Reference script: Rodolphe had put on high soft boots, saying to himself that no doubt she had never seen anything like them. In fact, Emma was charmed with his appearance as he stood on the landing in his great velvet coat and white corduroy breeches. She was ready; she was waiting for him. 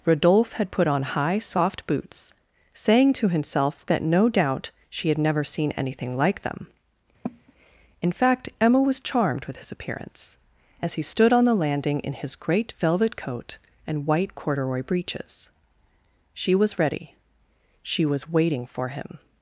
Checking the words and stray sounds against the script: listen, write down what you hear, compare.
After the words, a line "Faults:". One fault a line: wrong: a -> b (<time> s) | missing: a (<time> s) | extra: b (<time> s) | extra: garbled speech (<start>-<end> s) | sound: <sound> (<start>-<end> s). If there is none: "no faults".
Rodolphe had put on high soft boots, saying to himself that no doubt she had never seen anything like them. In fact, Emma was charmed with his appearance as he stood on the landing in his great velvet coat and white corduroy breeches. She was ready; she was waiting for him.
Faults:
sound: cough (7.2-7.5 s)